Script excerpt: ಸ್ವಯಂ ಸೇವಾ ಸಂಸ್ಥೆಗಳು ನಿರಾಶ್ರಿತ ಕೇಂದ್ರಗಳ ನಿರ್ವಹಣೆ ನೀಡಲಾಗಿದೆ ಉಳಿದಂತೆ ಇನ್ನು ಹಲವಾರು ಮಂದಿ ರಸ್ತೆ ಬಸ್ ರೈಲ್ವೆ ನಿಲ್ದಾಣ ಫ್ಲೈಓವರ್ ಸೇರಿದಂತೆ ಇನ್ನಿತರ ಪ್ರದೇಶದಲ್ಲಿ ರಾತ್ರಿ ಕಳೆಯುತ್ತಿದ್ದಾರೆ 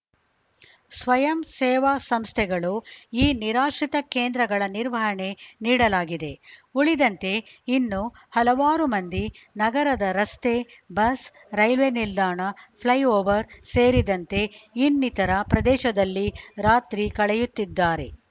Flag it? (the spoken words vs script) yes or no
yes